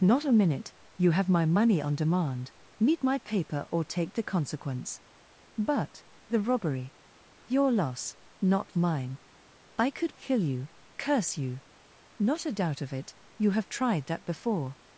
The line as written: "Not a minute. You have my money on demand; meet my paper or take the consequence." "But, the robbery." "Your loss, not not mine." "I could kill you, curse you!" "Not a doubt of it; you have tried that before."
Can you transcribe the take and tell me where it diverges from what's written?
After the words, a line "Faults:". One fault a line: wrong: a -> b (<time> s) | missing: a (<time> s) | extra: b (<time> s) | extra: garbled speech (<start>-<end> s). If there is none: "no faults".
"Not a minute. You have my money on demand; meet my paper or take the consequence." "But, the robbery." "Your loss, not mine." "I could kill you, curse you!" "Not a doubt of it; you have tried that before."
Faults:
missing: not (8.8 s)